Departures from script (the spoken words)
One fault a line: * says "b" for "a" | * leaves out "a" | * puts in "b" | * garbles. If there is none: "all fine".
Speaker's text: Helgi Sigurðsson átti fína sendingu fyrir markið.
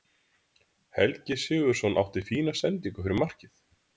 all fine